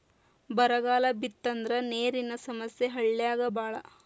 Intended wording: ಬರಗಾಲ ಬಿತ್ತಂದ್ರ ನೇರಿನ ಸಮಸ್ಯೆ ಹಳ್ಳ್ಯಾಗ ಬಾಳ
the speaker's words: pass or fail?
pass